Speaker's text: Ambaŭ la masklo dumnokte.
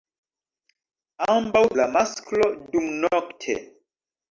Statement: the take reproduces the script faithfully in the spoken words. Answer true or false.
true